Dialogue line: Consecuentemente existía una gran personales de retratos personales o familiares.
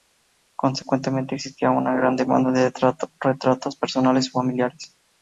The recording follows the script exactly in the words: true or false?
false